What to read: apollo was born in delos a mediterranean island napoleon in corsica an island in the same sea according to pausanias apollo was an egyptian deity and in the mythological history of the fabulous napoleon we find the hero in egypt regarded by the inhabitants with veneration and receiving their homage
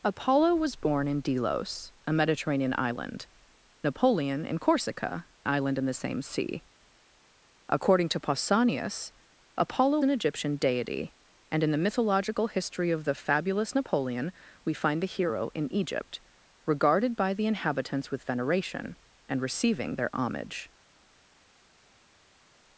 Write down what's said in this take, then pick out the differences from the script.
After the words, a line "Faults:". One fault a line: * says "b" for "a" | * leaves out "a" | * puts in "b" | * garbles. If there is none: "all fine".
apollo was born in delos a mediterranean island napoleon in corsica island in the same sea according to pausanias apollo an egyptian deity and in the mythological history of the fabulous napoleon we find the hero in egypt regarded by the inhabitants with veneration and receiving their homage
Faults:
* leaves out "an"
* leaves out "was"